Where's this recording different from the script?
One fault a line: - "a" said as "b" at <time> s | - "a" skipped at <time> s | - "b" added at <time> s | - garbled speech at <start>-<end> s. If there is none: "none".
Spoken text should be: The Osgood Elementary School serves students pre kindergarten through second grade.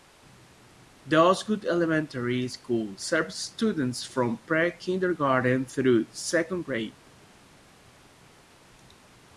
- "from" added at 4.0 s